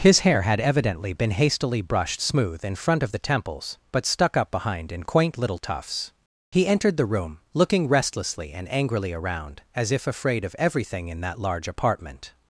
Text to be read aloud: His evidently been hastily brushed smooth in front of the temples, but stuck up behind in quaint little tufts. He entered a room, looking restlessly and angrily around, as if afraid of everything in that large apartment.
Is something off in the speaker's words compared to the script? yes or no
yes